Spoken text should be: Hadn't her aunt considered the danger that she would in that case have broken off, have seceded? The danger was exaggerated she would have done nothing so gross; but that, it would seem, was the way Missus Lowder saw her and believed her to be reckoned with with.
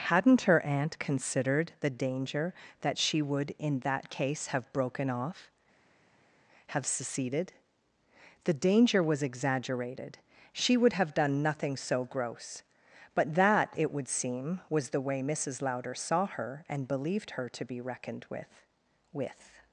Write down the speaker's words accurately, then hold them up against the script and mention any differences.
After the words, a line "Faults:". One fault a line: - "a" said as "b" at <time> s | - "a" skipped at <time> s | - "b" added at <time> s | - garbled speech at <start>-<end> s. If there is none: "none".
Hadn't her aunt considered the danger that she would in that case have broken off, have seceded? The danger was exaggerated she would have done nothing so gross; but that, it would seem, was the way Missus Lowder saw her and believed her to be reckoned with with.
Faults:
none